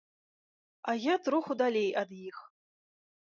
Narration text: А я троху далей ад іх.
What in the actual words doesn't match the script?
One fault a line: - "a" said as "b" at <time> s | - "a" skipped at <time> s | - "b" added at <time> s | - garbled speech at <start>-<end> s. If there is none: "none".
none